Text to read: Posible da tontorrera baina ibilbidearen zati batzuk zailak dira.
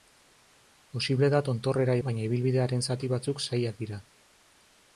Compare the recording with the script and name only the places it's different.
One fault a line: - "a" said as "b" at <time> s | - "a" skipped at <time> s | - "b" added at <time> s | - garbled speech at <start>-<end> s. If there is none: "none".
none